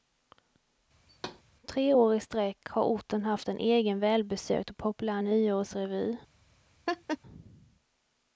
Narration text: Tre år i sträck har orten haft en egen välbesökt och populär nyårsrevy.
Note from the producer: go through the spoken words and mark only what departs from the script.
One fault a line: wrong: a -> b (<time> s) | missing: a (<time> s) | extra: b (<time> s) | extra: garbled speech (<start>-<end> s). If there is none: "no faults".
no faults